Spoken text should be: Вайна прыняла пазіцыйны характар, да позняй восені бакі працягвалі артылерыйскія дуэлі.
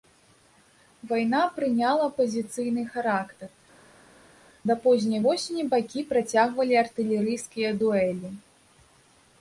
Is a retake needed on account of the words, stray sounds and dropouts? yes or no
no